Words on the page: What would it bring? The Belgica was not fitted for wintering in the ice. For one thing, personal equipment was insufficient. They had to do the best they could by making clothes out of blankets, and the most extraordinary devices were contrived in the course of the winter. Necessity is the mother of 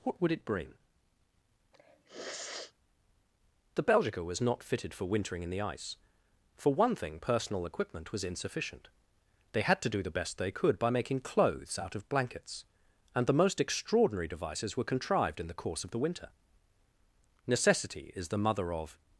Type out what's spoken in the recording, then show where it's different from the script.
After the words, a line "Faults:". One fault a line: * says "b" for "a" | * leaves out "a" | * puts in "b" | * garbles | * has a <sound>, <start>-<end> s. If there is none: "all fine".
What would it bring? The Belgica was not fitted for wintering in the ice. For one thing, personal equipment was insufficient. They had to do the best they could by making clothes out of blankets, and the most extraordinary devices were contrived in the course of the winter. Necessity is the mother of
Faults:
* has a sniff, 1.7-2.7 s